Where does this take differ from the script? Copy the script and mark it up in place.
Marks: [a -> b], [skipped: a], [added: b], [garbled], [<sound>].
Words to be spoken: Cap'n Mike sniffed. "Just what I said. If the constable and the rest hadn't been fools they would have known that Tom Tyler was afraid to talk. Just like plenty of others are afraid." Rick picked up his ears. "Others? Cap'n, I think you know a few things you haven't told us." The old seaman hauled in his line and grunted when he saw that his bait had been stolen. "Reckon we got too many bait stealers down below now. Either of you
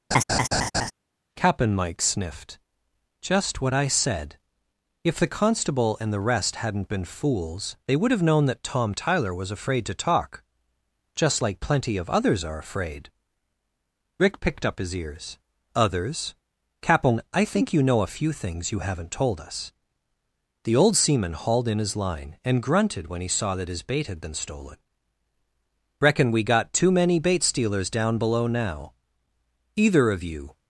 [laugh] Cap'n Mike sniffed. "Just what I said. If the constable and the rest hadn't been fools they would have known that Tom Tyler was afraid to talk. Just like plenty of others are afraid." Rick picked up his ears. "Others? Cap'n, I think you know a few things you haven't told us." The old seaman hauled in his line and grunted when he saw that his bait had been stolen. "Reckon we got too many bait stealers down below now. Either of you